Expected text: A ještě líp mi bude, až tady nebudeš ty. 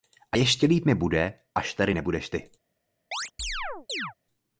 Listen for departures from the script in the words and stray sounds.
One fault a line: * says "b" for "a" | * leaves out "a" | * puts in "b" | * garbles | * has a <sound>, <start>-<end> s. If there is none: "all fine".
* has a chirp, 3.1-4.1 s